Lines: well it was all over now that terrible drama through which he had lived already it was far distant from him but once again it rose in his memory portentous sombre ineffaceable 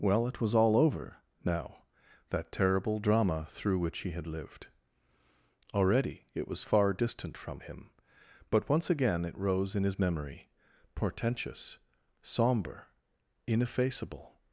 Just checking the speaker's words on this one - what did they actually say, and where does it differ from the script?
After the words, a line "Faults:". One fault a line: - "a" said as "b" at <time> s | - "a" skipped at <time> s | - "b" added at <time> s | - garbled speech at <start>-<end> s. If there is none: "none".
well it was all over now that terrible drama through which he had lived already it was far distant from him but once again it rose in his memory portentous sombre ineffaceable
Faults:
none